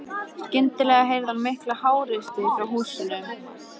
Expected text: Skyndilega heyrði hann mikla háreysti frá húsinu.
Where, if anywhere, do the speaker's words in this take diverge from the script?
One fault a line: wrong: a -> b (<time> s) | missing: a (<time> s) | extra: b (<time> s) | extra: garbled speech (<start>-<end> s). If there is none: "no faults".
no faults